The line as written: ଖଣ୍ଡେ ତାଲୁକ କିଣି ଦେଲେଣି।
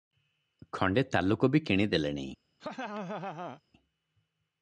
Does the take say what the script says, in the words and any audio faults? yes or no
no